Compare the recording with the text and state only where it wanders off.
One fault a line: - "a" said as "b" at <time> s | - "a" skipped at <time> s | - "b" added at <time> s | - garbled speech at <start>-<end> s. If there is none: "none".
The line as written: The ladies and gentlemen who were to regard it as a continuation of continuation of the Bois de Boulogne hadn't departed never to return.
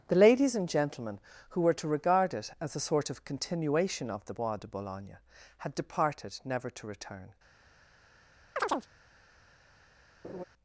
- "continuation" said as "sort" at 2.8 s
- "hadn't" said as "had" at 5.6 s